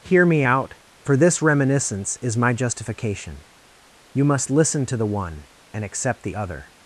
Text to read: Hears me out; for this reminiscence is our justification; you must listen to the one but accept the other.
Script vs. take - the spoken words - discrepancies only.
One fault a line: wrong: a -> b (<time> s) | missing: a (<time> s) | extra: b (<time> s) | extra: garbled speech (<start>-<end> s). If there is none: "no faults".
wrong: Hears -> Hear (0.0 s)
wrong: our -> my (2.4 s)
wrong: but -> and (5.7 s)